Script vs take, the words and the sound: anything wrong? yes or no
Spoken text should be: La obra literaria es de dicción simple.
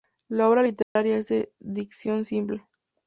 yes